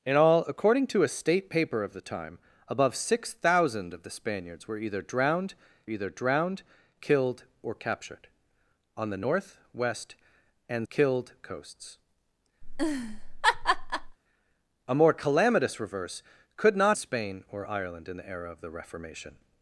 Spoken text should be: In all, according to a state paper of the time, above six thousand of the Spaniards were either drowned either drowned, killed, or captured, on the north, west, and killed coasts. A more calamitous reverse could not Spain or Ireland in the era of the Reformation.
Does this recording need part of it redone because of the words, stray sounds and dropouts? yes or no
yes